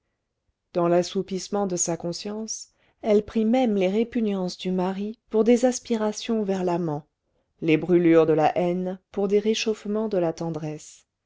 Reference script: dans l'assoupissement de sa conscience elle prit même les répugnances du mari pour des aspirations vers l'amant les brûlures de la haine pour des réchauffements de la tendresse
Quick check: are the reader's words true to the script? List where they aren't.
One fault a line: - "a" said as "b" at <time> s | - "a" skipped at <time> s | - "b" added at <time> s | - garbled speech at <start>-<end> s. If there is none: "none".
none